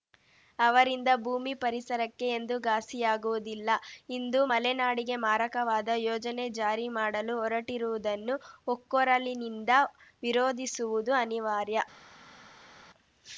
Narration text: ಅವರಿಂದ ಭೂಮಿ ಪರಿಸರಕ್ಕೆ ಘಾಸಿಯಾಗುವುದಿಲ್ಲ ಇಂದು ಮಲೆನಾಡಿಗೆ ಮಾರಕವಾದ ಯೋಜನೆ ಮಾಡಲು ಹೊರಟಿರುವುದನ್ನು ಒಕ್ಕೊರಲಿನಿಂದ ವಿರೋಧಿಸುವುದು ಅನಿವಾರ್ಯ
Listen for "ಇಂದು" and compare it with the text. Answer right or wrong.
right